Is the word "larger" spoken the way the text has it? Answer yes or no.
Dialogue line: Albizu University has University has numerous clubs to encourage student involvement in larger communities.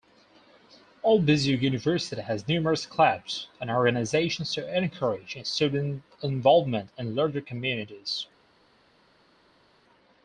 yes